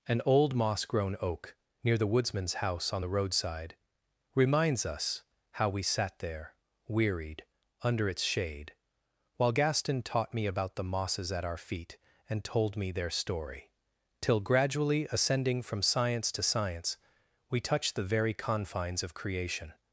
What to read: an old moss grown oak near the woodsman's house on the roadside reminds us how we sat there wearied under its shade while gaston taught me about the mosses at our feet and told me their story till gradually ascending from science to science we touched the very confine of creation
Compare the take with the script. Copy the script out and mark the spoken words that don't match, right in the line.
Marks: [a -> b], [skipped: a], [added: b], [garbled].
an old moss grown oak near the woodsman's house on the roadside reminds us how we sat there wearied under its shade while gaston taught me about the mosses at our feet and told me their story till gradually ascending from science to science we touched the very [confine -> confines] of creation